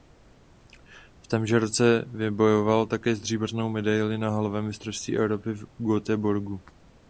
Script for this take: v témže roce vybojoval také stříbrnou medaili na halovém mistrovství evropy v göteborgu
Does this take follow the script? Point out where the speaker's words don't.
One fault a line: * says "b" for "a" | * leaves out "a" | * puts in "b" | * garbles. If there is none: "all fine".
all fine